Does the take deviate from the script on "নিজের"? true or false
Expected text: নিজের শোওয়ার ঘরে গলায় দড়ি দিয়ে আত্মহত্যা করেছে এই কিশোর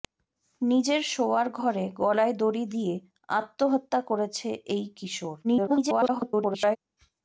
false